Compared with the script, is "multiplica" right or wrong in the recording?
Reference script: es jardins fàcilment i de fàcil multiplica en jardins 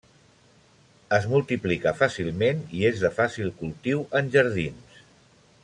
wrong